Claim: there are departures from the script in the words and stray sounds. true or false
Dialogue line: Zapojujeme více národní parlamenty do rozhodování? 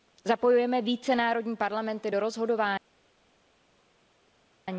false